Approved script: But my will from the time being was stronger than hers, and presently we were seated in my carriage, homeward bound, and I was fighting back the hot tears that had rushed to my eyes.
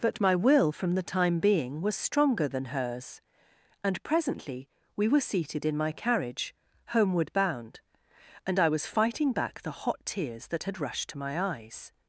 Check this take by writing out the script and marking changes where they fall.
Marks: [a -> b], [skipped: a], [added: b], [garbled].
But my will from the time being was stronger than hers, and presently we were seated in my carriage, homeward bound, and I was fighting back the hot tears that had rushed to my eyes.